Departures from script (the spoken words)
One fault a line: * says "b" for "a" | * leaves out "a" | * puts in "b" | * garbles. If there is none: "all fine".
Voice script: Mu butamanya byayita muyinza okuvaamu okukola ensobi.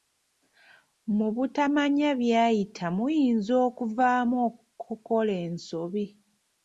all fine